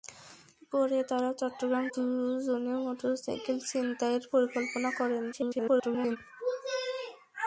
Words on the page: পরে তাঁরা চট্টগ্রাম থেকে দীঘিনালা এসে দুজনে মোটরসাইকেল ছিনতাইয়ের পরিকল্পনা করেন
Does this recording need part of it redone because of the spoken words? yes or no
yes